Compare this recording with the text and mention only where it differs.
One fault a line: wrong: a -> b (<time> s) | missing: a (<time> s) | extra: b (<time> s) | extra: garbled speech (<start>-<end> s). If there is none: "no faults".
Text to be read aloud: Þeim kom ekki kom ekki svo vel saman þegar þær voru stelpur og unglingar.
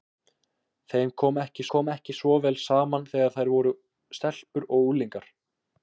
no faults